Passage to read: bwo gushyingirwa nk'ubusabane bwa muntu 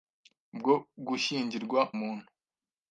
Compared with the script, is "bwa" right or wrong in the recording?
wrong